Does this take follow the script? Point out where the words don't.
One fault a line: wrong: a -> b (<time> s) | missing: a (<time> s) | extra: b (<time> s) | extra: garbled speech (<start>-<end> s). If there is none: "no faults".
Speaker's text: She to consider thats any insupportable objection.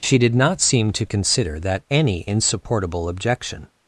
extra: did not seem (0.2 s)
wrong: thats -> that (1.6 s)